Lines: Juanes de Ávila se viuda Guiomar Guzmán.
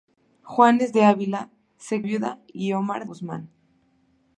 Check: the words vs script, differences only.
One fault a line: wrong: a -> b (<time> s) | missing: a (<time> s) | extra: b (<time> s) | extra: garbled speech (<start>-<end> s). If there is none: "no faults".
no faults